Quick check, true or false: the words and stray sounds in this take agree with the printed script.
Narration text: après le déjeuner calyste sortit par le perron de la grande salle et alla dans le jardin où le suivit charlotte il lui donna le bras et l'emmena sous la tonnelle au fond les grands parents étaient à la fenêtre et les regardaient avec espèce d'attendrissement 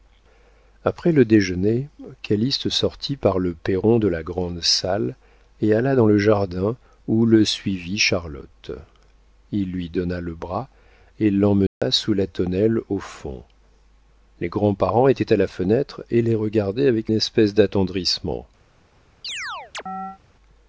false